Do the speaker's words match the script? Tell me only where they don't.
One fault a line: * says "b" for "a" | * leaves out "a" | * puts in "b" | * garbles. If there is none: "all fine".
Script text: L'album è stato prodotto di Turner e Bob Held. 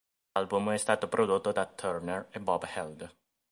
* says "da" for "di"